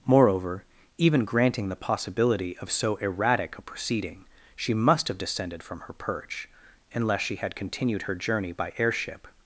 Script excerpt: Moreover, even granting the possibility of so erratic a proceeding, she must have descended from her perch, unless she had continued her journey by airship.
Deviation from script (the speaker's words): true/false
false